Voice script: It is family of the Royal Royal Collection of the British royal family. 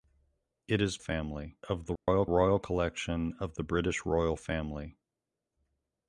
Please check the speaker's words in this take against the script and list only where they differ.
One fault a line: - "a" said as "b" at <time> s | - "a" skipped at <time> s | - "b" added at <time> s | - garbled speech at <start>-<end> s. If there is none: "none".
none